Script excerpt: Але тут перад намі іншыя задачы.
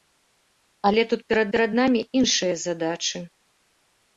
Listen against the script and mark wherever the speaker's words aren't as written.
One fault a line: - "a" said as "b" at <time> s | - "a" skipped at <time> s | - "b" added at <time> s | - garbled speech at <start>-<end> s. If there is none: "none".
- "перад" added at 1.6 s